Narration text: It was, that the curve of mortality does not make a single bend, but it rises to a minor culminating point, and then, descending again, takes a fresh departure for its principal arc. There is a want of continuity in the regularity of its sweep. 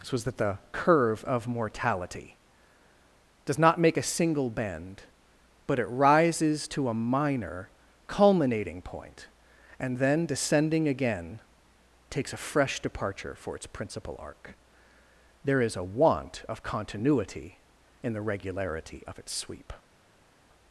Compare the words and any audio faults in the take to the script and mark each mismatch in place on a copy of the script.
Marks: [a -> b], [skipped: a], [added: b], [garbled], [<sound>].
[It -> This] was, that the curve of mortality does not make a single bend, but it rises to a minor culminating point, and then, descending again, takes a fresh departure for its principal arc. There is a want of continuity in the regularity of its sweep.